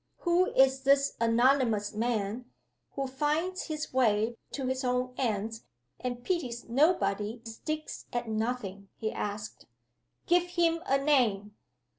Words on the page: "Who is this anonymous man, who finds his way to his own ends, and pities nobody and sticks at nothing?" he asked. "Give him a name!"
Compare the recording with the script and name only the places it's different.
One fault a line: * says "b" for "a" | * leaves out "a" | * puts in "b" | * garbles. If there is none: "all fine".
* leaves out "and"